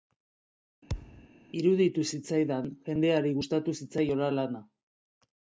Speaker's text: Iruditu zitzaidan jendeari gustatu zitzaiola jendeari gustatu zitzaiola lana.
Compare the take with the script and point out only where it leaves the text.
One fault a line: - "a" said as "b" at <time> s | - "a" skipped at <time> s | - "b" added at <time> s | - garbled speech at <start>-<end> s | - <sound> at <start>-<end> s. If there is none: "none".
- thud at 0.9-1.3 s
- "jendeari gustatu zitzaiola" skipped at 4.3 s